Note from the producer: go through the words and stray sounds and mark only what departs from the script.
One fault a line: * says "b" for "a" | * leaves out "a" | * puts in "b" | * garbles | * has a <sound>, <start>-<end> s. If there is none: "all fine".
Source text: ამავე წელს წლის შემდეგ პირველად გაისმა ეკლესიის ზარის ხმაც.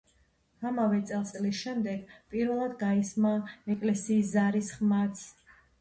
all fine